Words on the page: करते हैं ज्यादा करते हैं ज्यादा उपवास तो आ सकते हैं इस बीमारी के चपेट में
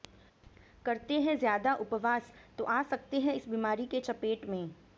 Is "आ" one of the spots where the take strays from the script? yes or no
no